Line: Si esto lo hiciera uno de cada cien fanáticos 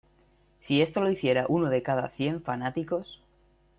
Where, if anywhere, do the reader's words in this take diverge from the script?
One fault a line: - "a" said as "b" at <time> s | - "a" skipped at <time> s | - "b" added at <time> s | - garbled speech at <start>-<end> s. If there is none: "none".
none